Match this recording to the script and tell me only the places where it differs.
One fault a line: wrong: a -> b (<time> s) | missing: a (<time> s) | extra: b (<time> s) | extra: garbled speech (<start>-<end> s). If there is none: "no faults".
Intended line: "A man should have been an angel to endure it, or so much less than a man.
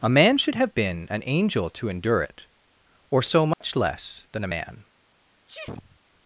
no faults